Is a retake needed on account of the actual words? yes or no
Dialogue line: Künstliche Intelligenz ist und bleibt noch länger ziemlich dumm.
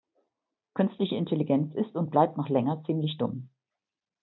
no